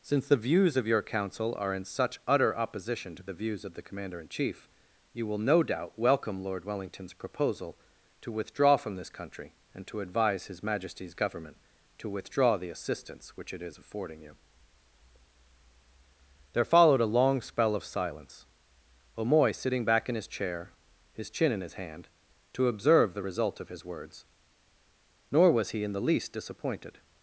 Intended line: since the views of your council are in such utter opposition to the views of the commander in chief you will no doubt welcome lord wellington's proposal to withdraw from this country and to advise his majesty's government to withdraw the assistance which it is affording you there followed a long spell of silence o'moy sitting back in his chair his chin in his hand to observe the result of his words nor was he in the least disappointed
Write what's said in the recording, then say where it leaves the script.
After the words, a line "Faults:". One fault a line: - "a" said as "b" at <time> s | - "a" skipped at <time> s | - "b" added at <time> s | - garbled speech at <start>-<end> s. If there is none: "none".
since the views of your council are in such utter opposition to the views of the commander in chief you will no doubt welcome lord wellington's proposal to withdraw from this country and to advise his majesty's government to withdraw the assistance which it is affording you there followed a long spell of silence o'moy sitting back in his chair his chin in his hand to observe the result of his words nor was he in the least disappointed
Faults:
none